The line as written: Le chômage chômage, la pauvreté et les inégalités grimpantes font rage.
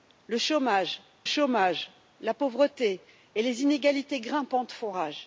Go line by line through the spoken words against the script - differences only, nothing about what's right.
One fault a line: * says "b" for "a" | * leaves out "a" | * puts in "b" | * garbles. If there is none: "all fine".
all fine